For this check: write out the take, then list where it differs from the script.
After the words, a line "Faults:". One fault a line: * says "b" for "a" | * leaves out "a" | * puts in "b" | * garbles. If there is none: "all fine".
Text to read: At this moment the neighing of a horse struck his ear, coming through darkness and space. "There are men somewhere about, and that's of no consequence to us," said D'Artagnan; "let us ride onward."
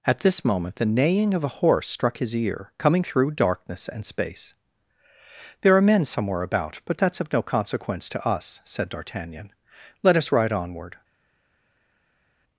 At this moment the neighing of a horse struck his ear, coming through darkness and space. "There are men somewhere about, but that's of no consequence to us," said D'Artagnan; "let us ride onward."
Faults:
* says "but" for "and"